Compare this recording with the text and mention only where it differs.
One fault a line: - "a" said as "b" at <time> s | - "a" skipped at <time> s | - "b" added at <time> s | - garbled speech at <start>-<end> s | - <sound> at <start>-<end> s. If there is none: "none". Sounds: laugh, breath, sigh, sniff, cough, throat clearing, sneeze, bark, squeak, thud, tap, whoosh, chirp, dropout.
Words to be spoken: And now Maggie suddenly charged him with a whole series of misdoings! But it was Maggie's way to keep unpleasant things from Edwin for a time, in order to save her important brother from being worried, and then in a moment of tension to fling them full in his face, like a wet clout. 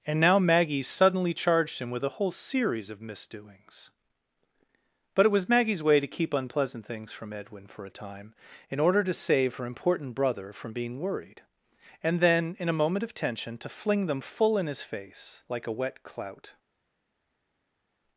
none